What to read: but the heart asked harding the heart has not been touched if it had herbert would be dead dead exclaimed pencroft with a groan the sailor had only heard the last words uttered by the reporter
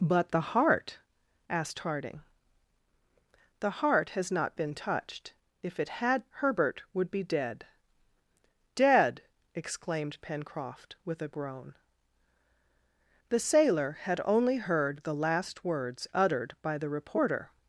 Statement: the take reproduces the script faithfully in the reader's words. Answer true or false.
true